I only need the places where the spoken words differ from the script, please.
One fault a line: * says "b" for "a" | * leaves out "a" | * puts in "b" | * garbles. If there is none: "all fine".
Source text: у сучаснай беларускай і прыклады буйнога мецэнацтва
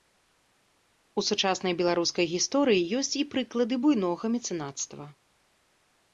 * puts in "гісторыі ёсць"